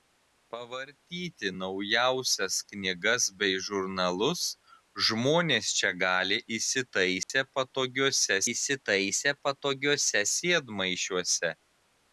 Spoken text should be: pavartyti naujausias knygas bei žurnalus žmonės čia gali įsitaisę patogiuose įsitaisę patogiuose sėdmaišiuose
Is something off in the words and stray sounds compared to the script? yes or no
yes